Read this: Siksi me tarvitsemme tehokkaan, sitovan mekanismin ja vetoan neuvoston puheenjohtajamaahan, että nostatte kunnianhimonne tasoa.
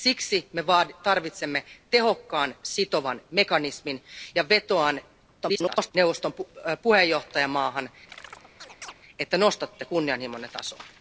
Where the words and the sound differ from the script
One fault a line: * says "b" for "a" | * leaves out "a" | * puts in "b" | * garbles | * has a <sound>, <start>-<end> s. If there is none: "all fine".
* garbles
* has a chirp, 8.1-8.9 s